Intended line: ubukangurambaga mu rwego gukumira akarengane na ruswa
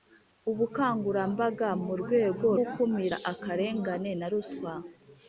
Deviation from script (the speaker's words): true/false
false